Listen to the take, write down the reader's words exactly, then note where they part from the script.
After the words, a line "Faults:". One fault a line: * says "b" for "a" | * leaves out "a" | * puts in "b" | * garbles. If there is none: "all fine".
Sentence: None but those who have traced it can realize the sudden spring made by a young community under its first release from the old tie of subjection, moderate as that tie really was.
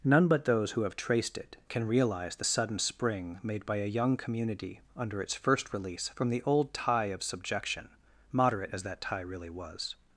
None but those who have traced it can realize the sudden spring made by a young community under its first release from the old tie of subjection, moderate as that tie really was.
Faults:
all fine